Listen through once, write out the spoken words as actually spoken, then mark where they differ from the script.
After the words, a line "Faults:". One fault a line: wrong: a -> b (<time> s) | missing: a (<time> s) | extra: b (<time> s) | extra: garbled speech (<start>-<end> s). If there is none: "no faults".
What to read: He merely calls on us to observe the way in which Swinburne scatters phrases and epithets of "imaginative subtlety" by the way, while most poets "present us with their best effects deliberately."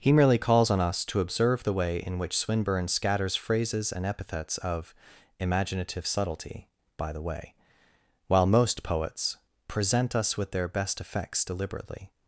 He merely calls on us to observe the way in which Swinburne scatters phrases and epithets of "imaginative subtlety" by the way, while most poets "present us with their best effects deliberately."
Faults:
no faults